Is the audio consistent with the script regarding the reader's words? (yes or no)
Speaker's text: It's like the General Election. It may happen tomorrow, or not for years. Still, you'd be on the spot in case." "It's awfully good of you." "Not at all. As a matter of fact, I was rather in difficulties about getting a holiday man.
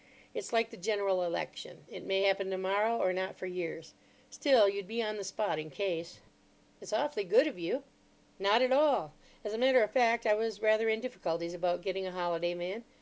yes